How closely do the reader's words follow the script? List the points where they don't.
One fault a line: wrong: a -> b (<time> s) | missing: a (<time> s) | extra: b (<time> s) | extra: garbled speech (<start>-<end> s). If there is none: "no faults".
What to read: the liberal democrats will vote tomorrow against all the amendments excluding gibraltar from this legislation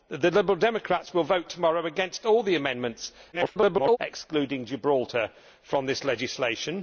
extra: garbled speech (3.3-4.0 s)